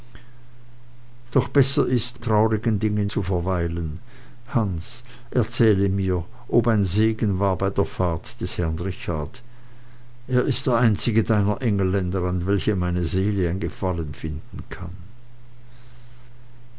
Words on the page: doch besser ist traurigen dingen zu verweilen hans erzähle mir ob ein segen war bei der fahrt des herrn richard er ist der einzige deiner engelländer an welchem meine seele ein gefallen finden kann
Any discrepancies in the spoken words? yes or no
no